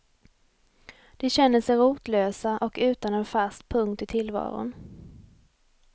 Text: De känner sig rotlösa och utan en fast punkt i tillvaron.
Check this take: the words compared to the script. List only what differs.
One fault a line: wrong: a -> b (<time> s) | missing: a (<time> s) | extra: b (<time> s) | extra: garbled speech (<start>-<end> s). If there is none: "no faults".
no faults